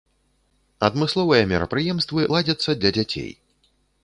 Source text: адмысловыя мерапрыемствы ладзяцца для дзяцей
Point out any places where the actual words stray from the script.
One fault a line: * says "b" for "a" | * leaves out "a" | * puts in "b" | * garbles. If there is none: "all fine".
all fine